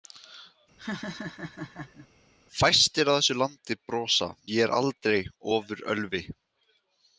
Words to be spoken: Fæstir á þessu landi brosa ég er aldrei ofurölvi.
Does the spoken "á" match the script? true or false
true